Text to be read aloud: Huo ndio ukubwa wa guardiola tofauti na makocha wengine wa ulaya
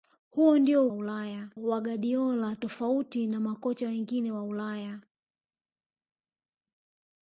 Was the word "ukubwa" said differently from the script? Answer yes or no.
yes